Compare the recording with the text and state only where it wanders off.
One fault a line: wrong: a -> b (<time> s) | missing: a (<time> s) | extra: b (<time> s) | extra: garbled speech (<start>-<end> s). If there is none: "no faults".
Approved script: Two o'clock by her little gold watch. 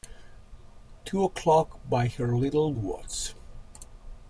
missing: gold (2.7 s)